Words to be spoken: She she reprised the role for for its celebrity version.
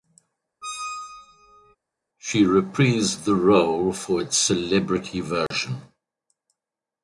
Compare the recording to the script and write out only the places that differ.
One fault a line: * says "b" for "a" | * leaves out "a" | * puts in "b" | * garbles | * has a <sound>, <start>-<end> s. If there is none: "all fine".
* has a squeak, 0.6-1.8 s
* leaves out "she"
* leaves out "for"
* has a dropout, 5.5-5.5 s